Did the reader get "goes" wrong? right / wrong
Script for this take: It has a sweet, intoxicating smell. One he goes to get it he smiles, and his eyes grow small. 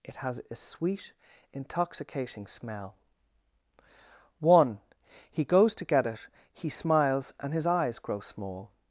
right